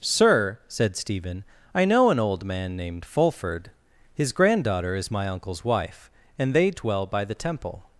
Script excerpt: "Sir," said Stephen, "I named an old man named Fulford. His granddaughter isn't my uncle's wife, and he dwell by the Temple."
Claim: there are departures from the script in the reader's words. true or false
true